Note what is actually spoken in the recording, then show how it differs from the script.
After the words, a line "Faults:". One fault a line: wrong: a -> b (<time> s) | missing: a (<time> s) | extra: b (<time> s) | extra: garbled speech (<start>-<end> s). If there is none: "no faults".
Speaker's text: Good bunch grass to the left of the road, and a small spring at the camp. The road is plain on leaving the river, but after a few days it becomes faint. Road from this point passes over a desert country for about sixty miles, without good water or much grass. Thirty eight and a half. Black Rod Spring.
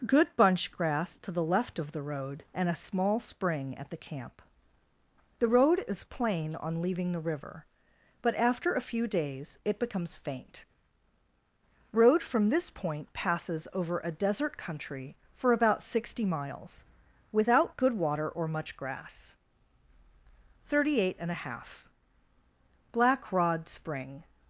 Good bunch grass to the left of the road, and a small spring at the camp. The road is plain on leaving the river, but after a few days it becomes faint. Road from this point passes over a desert country for about sixty miles, without good water or much grass. Thirty eight and a half. Black Rod Spring.
Faults:
no faults